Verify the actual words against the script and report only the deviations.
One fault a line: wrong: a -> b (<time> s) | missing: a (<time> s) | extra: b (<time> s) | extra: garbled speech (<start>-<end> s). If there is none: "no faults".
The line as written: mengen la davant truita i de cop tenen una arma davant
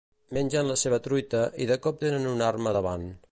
wrong: davant -> seva (0.8 s)